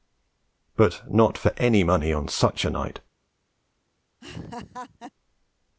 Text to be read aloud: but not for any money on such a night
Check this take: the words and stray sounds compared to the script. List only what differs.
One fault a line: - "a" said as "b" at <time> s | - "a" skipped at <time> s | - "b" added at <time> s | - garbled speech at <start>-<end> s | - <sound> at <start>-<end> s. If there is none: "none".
- laugh at 4.2-5.1 s